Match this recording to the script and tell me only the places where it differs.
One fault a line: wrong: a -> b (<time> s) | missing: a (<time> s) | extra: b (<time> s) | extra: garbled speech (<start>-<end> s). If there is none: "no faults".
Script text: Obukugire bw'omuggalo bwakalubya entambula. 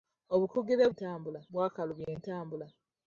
wrong: bw'omuggalo -> entambula (0.9 s)